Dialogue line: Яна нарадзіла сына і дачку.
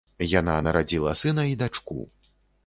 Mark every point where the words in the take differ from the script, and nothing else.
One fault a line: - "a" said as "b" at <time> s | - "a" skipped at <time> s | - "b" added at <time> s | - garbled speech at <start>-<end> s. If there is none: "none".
none